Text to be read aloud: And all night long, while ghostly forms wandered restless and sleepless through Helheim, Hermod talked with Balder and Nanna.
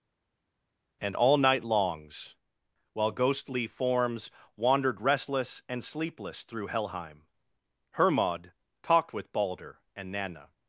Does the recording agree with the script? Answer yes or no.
no